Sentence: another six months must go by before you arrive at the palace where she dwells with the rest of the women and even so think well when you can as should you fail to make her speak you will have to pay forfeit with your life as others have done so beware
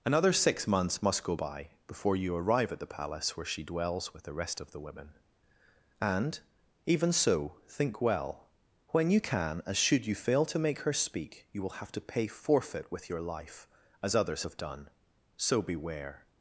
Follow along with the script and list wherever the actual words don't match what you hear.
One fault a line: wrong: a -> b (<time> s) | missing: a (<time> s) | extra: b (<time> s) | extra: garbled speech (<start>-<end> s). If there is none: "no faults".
no faults